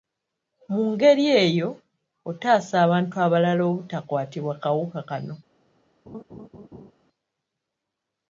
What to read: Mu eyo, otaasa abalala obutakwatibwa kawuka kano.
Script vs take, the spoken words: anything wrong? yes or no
yes